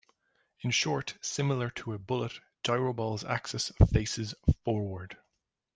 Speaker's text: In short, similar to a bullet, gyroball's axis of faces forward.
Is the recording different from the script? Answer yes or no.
no